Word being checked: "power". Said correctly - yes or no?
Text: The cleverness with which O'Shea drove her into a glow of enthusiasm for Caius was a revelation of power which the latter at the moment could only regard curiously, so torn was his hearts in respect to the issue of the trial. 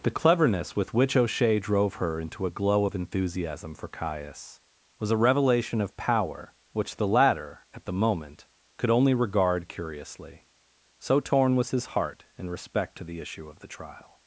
yes